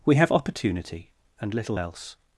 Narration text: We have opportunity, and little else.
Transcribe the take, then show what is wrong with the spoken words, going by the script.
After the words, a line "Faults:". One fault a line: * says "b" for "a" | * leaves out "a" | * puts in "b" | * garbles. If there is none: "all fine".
We have opportunity, and little else.
Faults:
all fine